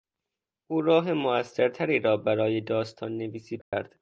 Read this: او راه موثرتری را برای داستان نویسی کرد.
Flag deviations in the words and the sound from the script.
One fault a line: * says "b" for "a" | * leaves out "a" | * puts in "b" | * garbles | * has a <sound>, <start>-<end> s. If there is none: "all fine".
* has a dropout, 3.6-3.7 s